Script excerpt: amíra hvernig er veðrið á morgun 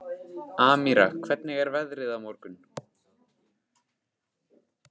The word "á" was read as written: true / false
true